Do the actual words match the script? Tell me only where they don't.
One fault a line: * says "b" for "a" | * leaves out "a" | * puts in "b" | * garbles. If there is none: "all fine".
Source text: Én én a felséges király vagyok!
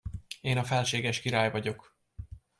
* leaves out "én"